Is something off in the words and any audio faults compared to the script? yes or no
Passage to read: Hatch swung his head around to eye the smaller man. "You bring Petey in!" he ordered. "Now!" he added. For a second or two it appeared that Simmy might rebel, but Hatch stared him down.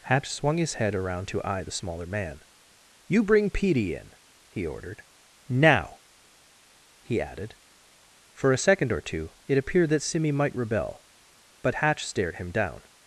no